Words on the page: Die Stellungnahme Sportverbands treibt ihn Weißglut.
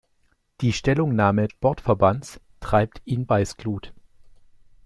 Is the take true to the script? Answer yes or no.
yes